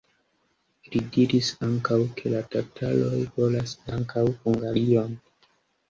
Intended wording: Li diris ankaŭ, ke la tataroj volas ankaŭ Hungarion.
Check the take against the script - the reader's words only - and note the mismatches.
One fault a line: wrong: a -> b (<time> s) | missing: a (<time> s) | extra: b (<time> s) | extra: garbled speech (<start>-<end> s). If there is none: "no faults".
no faults